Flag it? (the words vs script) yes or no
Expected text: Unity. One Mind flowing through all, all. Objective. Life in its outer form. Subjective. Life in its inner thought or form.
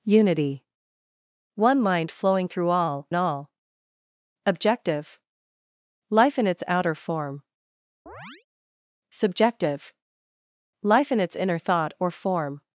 no